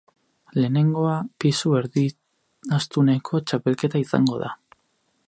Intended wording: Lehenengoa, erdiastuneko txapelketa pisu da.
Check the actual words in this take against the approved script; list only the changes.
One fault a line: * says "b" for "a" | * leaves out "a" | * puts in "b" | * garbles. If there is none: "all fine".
* puts in "pisu"
* says "izango" for "pisu"